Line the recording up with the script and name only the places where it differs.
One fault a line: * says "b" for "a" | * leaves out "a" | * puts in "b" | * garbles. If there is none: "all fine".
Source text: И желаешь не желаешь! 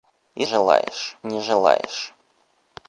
all fine